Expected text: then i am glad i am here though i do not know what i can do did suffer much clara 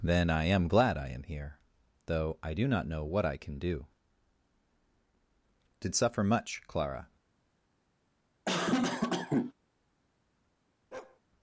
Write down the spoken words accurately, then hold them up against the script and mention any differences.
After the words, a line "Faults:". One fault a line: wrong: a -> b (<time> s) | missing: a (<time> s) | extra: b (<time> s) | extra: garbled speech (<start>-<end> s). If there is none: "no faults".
then i am glad i am here though i do not know what i can do did suffer much clara
Faults:
no faults